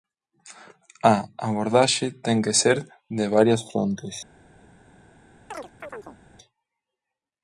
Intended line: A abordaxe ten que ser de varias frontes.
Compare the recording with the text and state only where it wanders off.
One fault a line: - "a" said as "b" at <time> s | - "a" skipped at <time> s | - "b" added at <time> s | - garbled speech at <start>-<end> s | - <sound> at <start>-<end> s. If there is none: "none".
- chirp at 5.5-6.2 s